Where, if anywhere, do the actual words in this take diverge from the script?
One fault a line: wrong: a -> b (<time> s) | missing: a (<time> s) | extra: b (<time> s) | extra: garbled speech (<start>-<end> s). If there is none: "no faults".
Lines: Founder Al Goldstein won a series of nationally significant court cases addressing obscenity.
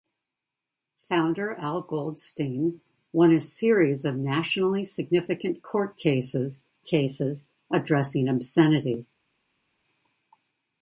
extra: cases (6.8 s)